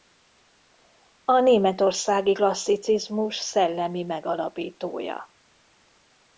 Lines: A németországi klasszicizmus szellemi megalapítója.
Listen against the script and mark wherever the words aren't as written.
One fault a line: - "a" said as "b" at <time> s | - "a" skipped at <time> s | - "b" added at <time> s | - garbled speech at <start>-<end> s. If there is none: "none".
none